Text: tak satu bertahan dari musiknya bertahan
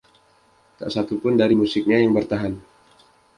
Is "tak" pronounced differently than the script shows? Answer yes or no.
no